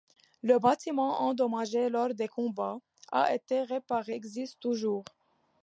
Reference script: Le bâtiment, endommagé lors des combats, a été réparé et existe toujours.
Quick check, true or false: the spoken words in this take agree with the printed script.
false